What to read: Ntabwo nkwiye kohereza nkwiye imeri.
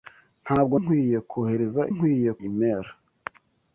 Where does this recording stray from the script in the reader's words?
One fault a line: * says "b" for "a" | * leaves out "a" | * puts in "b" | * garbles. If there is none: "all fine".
all fine